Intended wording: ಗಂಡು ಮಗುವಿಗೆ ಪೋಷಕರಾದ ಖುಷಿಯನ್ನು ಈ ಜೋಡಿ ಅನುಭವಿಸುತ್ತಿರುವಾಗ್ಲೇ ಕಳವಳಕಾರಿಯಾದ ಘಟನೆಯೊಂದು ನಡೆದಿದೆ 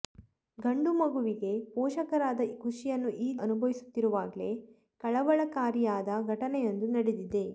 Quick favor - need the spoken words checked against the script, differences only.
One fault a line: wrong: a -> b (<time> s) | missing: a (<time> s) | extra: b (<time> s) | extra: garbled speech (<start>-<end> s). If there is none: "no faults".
missing: ಜೋಡಿ (3.4 s)